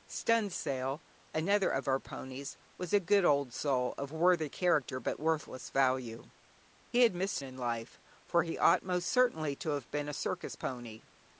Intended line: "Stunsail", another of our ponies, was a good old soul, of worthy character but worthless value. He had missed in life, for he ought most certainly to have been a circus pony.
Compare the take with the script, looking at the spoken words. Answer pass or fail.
pass